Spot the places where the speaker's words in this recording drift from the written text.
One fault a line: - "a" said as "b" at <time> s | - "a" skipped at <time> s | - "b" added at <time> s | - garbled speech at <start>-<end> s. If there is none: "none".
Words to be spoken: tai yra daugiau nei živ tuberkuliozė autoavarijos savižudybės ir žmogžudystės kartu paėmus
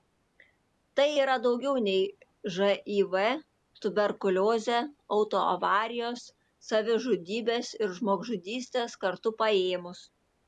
none